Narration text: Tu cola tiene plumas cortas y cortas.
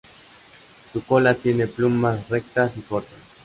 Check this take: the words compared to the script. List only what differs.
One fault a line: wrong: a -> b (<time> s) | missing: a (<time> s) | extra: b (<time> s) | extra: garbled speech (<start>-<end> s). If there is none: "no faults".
wrong: Tu -> Su (0.9 s)
wrong: cortas -> rectas (2.3 s)